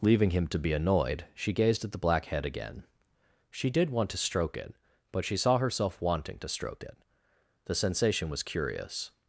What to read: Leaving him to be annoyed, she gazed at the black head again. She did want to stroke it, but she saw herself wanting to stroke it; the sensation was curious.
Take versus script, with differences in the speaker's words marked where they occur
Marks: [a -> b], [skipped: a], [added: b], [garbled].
Leaving him to be annoyed, she gazed at the black head again. She did want to stroke it, but she saw herself wanting to stroke it; the sensation was curious.